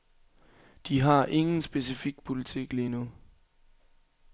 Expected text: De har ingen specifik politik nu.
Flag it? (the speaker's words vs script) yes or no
yes